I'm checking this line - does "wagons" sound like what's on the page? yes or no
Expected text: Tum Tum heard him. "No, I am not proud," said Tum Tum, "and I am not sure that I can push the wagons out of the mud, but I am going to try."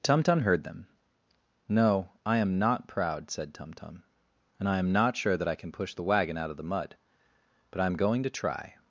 no